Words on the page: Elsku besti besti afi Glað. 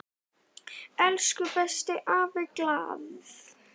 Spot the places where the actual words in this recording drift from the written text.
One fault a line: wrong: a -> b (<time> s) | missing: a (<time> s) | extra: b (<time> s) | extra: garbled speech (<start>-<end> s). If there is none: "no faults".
missing: besti (1.9 s)